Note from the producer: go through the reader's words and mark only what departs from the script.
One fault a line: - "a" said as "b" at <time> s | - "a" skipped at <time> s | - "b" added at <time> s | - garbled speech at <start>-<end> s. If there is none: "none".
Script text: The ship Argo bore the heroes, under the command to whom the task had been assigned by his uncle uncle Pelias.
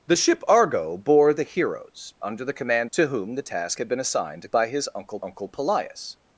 none